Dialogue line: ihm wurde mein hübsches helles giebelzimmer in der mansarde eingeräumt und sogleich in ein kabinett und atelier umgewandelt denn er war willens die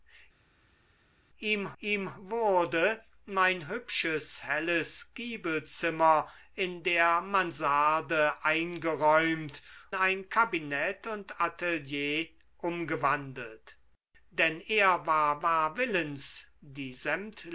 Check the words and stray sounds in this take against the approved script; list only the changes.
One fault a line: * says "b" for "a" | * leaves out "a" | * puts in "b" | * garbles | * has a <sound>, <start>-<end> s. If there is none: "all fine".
* puts in "ihm"
* leaves out "und sogleich in"
* puts in "war"